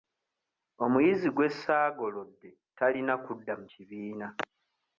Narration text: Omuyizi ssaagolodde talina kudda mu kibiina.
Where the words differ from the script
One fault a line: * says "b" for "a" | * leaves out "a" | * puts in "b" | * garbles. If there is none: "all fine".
* puts in "gwe"